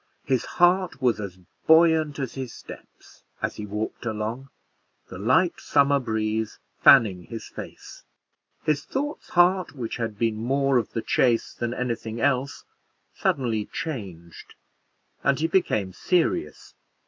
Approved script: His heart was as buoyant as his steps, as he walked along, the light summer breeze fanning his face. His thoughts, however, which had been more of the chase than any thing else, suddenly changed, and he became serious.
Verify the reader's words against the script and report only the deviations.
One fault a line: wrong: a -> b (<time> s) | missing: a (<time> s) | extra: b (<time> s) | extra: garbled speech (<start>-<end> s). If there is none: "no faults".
wrong: however -> heart (9.3 s)